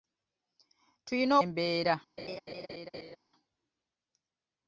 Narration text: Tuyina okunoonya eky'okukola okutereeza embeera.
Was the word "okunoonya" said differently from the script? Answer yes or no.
yes